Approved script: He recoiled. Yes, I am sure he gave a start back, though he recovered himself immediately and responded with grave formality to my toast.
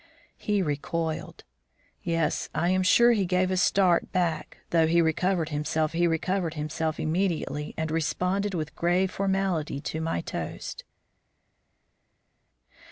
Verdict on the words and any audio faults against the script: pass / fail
fail